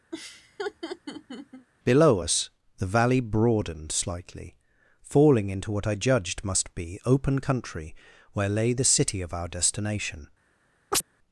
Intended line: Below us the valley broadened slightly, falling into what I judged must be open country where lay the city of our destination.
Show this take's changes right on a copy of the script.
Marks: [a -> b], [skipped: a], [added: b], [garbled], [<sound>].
[laugh] Below us the valley broadened slightly, falling into what I judged must be open country where lay the city of our destination. [chirp]